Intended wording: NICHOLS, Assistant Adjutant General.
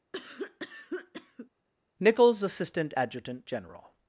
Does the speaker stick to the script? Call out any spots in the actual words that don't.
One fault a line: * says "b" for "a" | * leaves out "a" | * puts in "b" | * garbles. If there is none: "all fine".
all fine